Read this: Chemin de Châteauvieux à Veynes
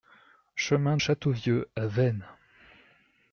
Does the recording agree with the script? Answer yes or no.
no